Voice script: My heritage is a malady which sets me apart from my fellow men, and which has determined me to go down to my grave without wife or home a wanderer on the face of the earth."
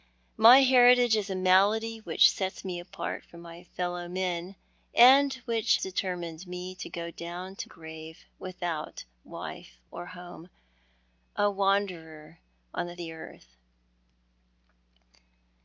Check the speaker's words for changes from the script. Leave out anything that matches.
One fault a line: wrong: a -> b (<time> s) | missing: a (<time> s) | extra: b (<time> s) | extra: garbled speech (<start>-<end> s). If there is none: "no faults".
missing: has (5.8 s)
missing: my (7.7 s)
missing: face of (13.0 s)